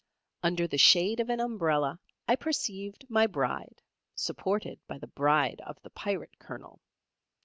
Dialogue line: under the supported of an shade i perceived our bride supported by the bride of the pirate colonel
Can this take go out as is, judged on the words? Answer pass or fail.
fail